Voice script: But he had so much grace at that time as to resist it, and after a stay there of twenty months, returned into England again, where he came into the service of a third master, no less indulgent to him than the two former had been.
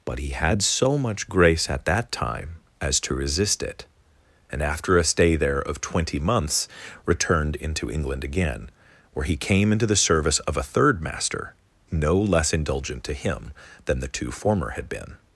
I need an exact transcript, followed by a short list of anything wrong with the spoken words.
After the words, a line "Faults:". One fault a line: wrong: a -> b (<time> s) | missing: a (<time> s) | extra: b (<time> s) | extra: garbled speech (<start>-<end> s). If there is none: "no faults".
But he had so much grace at that time as to resist it, and after a stay there of twenty months, returned into England again, where he came into the service of a third master, no less indulgent to him than the two former had been.
Faults:
no faults